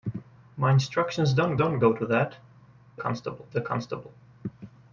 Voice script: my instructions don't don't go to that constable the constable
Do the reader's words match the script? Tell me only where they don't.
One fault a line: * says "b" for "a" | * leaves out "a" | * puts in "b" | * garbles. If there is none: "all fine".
all fine